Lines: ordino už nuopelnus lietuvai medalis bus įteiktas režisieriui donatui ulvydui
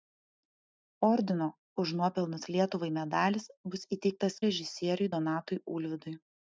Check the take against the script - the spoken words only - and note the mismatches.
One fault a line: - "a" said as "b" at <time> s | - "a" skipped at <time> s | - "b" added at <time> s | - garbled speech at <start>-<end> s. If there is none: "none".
none